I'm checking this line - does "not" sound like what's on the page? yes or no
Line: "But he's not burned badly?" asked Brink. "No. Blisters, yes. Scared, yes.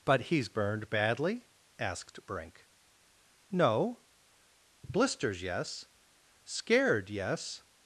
no